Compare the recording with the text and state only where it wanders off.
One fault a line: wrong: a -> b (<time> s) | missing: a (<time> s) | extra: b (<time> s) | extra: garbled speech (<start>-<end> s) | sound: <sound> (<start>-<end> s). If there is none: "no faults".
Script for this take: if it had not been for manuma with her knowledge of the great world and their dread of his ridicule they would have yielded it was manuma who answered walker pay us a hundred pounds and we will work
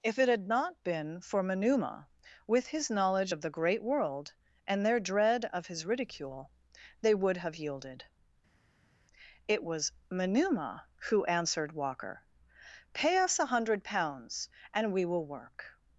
wrong: her -> his (2.6 s)